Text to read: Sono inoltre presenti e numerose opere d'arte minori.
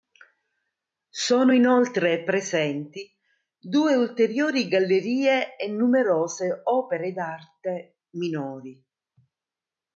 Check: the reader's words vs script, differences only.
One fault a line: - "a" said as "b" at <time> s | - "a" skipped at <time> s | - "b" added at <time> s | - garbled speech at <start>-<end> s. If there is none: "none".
- "due ulteriori gallerie" added at 3.6 s